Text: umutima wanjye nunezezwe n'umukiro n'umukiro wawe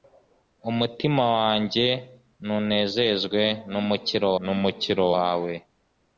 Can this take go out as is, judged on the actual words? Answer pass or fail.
pass